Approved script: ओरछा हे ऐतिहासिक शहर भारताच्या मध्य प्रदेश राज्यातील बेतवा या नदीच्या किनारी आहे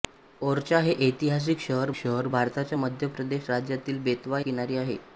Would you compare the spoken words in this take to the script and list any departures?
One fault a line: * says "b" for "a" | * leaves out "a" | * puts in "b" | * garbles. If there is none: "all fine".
* puts in "शहर"
* leaves out "या नदीच्या"